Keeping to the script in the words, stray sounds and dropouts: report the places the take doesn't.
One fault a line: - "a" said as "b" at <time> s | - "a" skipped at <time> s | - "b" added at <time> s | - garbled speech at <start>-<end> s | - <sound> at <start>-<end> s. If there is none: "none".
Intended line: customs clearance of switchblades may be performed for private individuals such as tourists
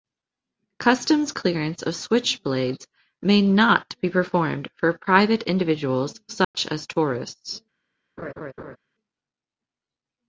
- "not" added at 3.4 s
- dropout at 6.4-6.5 s
- laugh at 8.2-8.8 s